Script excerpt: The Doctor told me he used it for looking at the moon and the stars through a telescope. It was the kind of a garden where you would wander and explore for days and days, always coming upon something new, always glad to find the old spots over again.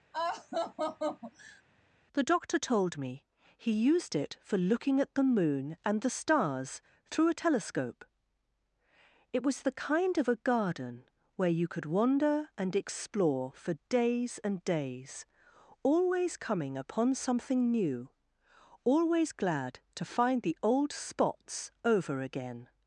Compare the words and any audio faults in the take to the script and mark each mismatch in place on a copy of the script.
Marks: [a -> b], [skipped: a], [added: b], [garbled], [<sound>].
[laugh] The Doctor told me he used it for looking at the moon and the stars through a telescope. It was the kind of a garden where you [would -> could] wander and explore for days and days, always coming upon something new, always glad to find the old spots over again.